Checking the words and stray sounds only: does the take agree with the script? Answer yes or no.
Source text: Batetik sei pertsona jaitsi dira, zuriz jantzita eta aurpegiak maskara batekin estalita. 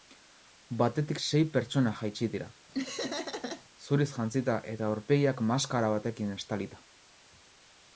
no